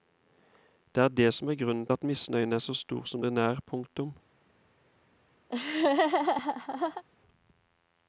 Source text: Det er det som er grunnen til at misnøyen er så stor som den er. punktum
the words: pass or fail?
fail